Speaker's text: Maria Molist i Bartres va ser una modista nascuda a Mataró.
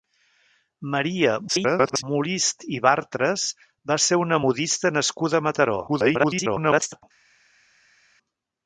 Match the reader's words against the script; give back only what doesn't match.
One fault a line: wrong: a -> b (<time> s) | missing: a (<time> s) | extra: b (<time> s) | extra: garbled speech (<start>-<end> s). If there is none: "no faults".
extra: garbled speech (1.5-2.0 s)
extra: garbled speech (5.9-7.0 s)